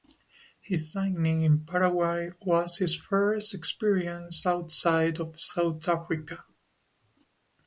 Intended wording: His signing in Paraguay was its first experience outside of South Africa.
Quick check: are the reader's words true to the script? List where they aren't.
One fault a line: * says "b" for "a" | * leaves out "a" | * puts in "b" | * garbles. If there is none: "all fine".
* says "his" for "its"